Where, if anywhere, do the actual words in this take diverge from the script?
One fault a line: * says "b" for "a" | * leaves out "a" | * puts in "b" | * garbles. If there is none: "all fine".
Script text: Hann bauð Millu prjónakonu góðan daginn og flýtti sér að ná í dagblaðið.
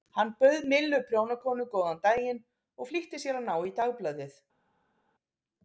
all fine